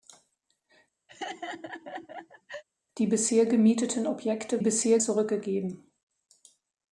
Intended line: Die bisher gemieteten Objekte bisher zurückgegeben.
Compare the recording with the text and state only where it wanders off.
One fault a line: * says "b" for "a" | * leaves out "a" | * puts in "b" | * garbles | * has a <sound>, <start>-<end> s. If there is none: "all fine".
* has a laugh, 1.1-2.6 s